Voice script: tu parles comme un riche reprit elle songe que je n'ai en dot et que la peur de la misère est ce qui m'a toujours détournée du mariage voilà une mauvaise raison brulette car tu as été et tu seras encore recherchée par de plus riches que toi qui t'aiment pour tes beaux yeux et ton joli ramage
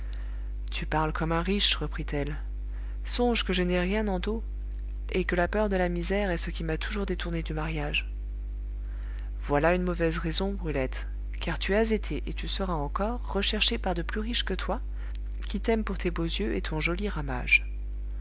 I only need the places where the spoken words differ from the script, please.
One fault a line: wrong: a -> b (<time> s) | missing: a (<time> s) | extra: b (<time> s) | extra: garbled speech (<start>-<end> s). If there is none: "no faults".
extra: rien (3.8 s)